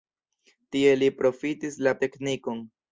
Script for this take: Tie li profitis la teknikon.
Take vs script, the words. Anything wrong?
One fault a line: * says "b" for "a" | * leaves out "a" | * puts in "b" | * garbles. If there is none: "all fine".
all fine